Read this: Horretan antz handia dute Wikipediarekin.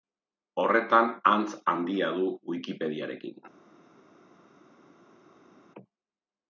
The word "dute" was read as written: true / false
false